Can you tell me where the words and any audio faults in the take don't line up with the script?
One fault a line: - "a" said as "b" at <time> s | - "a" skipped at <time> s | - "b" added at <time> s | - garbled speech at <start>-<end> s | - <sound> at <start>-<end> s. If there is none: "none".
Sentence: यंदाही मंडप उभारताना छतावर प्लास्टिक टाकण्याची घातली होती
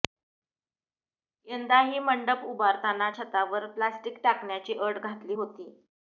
- "अट" added at 4.8 s